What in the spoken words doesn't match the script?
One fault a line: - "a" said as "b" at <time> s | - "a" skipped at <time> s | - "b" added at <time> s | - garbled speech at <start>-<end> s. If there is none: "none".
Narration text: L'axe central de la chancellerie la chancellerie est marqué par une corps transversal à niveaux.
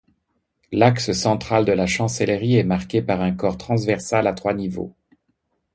- "la chancellerie" skipped at 2.5 s
- "une" said as "un" at 3.2 s
- "trois" added at 4.3 s